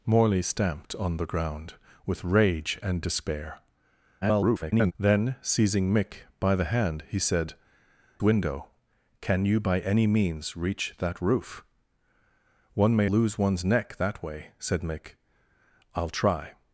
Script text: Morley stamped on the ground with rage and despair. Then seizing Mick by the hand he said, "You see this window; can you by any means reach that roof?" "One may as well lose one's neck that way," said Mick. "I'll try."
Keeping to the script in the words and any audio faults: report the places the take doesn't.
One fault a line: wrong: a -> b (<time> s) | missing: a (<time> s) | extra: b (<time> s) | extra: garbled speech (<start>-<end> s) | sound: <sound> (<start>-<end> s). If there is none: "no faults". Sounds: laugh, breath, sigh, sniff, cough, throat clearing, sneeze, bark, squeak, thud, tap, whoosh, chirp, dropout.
extra: garbled speech (4.2-4.9 s)
missing: You see this (7.5 s)
missing: as well (13.1 s)